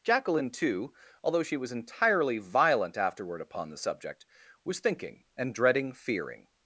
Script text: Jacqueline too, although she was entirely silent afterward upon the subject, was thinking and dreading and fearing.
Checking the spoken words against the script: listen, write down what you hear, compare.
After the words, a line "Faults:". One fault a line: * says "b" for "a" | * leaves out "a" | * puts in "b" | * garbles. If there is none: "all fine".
Jacqueline too, although she was entirely violent afterward upon the subject, was thinking and dreading fearing.
Faults:
* says "violent" for "silent"
* leaves out "and"